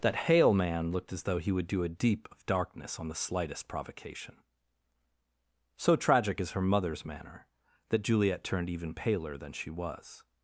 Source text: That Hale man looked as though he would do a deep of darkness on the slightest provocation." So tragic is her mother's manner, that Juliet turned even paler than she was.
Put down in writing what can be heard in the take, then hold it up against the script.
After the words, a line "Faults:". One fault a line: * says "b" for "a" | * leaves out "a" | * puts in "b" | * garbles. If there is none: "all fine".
That Hale man looked as though he would do a deep of darkness on the slightest provocation." So tragic is her mother's manner, that Juliet turned even paler than she was.
Faults:
all fine